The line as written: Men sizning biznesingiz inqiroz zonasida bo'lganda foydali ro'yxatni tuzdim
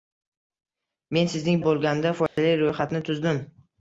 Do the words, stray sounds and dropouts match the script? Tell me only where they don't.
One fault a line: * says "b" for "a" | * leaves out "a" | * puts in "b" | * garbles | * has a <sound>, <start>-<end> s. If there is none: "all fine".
* leaves out "biznesingiz inqiroz zonasida"
* has a dropout, 2.3-2.4 s